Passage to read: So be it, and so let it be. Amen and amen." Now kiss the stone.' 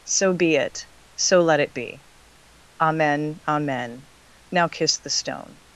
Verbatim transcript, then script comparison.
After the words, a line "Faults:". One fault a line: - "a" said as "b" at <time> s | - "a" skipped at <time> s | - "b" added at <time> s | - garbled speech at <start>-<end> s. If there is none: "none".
So be it, so let it be. Amen amen." Now kiss the stone.'
Faults:
- "and" skipped at 0.9 s
- "and" skipped at 3.4 s